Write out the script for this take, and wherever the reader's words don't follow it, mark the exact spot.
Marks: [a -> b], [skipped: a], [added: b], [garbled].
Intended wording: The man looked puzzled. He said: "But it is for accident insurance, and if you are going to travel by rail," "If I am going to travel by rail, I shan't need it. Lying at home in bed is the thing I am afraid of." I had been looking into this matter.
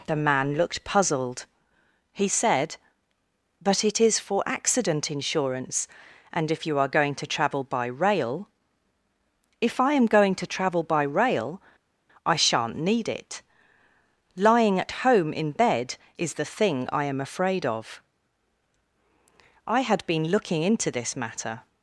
The man looked puzzled. He said: "But it is for accident insurance, and if you are going to travel by rail," "If I am going to travel by rail, I shan't need it. Lying at home in bed is the thing I am afraid of." I had been looking into this matter.